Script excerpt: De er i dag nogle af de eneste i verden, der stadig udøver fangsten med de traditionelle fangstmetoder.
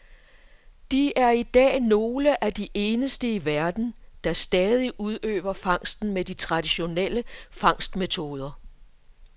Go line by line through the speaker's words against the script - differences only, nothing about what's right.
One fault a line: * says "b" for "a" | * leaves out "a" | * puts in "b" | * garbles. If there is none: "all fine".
all fine